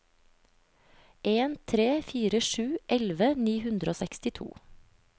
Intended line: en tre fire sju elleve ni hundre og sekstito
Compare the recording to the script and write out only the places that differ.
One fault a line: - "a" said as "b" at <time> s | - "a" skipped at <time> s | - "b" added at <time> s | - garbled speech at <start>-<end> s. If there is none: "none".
none